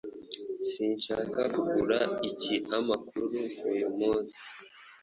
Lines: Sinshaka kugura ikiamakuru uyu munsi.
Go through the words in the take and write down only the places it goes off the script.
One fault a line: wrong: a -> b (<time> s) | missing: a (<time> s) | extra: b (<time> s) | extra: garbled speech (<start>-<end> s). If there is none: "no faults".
no faults